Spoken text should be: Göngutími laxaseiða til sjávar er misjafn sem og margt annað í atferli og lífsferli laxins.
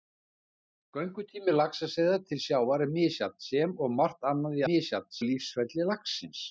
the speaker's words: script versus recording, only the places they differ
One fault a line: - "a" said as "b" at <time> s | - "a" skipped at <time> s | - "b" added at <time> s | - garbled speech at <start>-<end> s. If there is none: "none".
- "atferli" said as "misjafn" at 4.7 s